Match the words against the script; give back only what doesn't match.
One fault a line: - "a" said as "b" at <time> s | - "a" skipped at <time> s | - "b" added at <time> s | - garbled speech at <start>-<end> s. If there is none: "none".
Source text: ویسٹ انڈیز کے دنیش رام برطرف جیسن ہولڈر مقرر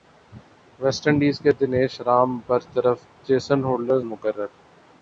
none